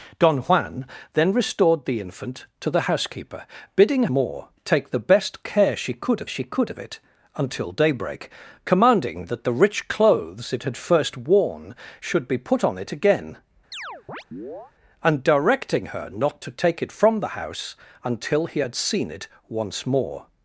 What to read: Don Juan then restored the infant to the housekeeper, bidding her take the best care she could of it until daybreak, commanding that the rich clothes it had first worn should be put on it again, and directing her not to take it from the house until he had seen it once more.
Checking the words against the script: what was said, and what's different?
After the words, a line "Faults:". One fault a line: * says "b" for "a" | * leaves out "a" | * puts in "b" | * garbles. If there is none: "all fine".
Don Juan then restored the infant to the housekeeper, bidding more take the best care she could of she could of it until daybreak, commanding that the rich clothes it had first worn should be put on it again, and directing her not to take it from the house until he had seen it once more.
Faults:
* says "more" for "her"
* puts in "she could of"